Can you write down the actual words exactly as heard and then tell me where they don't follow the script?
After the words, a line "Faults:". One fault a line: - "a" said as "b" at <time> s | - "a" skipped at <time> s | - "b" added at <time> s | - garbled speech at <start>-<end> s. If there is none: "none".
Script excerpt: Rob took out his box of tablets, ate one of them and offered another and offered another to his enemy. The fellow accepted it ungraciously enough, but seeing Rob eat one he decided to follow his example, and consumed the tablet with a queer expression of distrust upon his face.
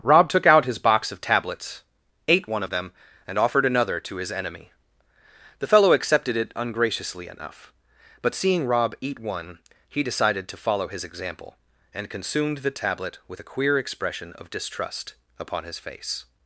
Rob took out his box of tablets, ate one of them and offered another to his enemy. The fellow accepted it ungraciously enough, but seeing Rob eat one he decided to follow his example, and consumed the tablet with a queer expression of distrust upon his face.
Faults:
- "and offered another" skipped at 4.0 s